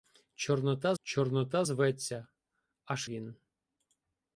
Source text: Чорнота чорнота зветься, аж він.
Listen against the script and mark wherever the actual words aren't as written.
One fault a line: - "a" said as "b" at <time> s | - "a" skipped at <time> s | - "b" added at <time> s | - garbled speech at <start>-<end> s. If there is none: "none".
none